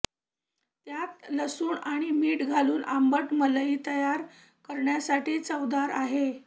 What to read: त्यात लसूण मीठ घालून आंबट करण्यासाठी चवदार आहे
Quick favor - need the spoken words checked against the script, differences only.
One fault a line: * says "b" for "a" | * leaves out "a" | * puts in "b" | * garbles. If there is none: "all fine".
* puts in "आणि"
* puts in "मलई तयार"